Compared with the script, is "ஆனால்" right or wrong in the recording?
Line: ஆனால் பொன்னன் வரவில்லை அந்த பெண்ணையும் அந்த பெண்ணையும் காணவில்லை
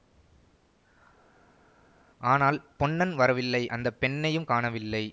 right